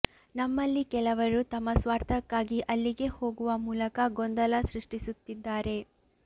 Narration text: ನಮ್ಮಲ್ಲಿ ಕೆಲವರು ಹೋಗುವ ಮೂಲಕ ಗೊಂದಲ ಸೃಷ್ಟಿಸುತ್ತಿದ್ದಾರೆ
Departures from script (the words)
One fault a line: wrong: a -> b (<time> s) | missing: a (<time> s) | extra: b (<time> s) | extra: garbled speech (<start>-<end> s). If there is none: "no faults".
extra: ತಮ್ಮ ಸ್ವಾರ್ಥಕ್ಕಾಗಿ ಅಲ್ಲಿಗೆ (1.5 s)